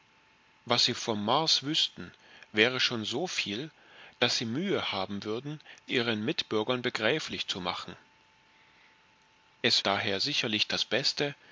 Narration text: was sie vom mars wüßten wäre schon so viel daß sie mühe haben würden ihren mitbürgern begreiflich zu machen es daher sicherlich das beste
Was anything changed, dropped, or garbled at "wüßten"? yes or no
no